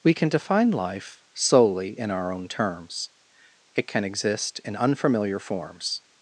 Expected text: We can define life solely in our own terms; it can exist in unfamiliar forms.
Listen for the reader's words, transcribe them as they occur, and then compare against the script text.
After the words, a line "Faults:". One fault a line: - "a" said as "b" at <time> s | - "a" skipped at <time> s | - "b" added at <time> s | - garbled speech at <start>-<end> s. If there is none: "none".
We can define life solely in our own terms; it can exist in unfamiliar forms.
Faults:
none